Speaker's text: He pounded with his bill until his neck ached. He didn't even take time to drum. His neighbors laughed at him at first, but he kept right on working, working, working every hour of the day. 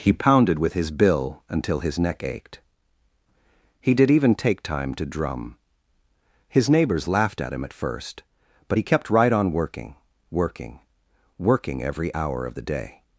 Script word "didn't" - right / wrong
wrong